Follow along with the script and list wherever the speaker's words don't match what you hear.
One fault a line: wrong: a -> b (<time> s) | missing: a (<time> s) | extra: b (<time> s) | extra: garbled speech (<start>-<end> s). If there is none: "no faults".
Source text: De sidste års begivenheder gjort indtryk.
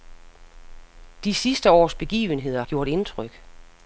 no faults